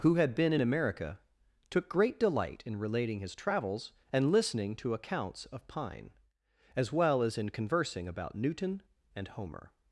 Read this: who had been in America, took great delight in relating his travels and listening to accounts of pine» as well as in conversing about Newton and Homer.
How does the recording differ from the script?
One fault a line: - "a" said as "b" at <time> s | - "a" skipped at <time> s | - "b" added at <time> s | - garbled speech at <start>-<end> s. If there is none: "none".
none